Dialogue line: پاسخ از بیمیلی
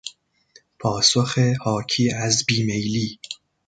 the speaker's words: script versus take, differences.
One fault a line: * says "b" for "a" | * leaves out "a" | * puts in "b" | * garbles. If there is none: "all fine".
* puts in "حاکی"